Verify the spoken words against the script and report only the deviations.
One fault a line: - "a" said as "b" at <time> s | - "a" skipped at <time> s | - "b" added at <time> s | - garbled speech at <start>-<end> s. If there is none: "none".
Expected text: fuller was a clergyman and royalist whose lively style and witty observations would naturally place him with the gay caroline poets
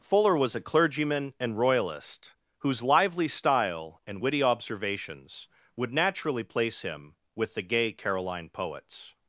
none